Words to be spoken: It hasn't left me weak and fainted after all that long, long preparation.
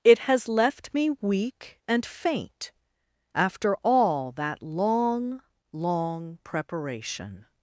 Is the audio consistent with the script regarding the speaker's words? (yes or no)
no